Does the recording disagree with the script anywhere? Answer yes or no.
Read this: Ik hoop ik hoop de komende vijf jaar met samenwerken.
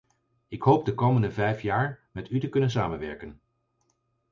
yes